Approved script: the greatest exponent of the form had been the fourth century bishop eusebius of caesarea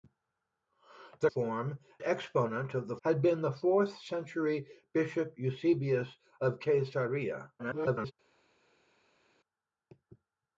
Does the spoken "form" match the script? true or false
false